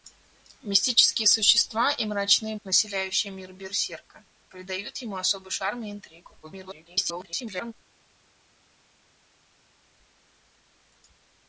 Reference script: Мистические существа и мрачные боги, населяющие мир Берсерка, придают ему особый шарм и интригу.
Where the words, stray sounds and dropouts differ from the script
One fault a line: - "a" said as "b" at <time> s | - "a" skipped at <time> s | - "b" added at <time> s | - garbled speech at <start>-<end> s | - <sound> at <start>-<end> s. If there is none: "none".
- "боги" skipped at 2.5 s
- garbled speech at 6.4-7.7 s